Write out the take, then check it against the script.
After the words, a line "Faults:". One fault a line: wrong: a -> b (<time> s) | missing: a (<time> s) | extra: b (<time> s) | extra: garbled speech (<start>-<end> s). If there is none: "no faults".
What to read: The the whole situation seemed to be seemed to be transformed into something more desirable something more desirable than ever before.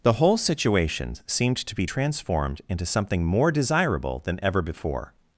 The whole situation seemed to be transformed into something more desirable than ever before.
Faults:
missing: the (0.1 s)
missing: seemed to be (1.9 s)
missing: something more desirable (4.2 s)